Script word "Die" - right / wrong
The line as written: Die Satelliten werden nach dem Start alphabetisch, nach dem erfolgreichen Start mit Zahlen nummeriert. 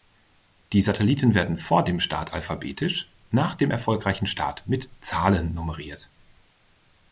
right